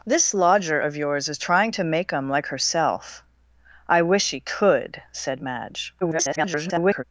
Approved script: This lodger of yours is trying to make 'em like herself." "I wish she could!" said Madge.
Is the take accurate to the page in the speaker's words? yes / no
no